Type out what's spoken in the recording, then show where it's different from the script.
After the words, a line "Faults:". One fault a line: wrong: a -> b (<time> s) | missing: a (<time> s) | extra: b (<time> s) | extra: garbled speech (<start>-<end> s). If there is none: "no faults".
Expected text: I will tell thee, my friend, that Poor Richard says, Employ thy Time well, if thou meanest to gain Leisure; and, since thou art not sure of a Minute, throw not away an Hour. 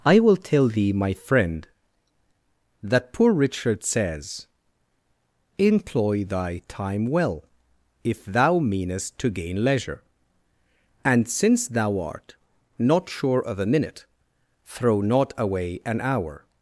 I will tell thee, my friend, that Poor Richard says, Employ thy Time well, if thou meanest to gain Leisure; and, since thou art not sure of a Minute, throw not away an Hour.
Faults:
no faults